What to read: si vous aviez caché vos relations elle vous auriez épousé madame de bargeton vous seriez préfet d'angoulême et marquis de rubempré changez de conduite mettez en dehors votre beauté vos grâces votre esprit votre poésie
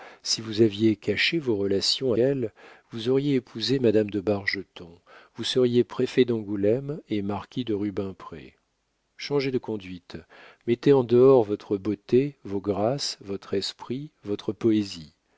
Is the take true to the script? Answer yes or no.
yes